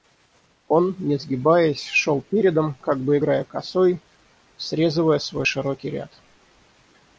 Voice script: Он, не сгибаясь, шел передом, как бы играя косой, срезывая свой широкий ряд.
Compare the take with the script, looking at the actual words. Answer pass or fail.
pass